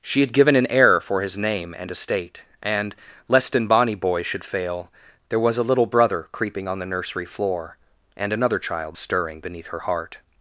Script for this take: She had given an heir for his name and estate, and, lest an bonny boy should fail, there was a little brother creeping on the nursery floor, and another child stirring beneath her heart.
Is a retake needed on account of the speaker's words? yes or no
no